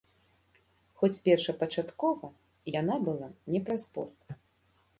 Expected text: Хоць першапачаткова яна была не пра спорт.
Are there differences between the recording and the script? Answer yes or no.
no